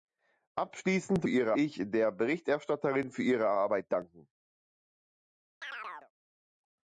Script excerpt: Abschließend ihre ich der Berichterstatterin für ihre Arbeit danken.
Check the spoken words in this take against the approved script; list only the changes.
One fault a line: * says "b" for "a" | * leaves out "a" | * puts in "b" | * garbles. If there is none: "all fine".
all fine